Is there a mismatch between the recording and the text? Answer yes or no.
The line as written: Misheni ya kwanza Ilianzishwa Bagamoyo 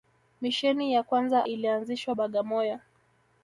no